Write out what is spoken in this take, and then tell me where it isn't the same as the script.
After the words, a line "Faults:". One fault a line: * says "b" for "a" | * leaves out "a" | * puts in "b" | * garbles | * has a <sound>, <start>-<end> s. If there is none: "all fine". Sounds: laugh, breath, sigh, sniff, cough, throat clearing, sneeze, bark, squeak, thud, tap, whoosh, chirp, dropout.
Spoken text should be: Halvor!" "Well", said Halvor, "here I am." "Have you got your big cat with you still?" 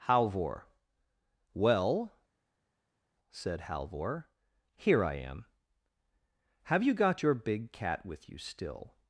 Halvor!" "Well", said Halvor, "here I am." "Have you got your big cat with you still?"
Faults:
all fine